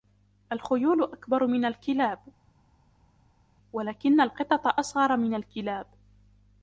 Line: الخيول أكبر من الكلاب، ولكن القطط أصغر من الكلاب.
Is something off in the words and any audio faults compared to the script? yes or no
no